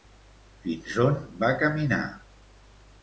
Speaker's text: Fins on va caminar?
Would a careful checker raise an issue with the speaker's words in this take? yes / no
no